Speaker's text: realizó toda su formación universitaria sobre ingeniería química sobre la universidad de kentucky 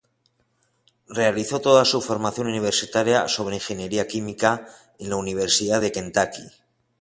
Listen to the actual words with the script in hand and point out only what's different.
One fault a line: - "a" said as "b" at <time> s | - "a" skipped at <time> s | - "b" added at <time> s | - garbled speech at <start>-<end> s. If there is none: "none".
- "sobre" said as "en" at 5.0 s